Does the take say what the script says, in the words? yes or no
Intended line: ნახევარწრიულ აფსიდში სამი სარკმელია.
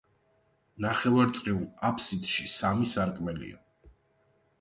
yes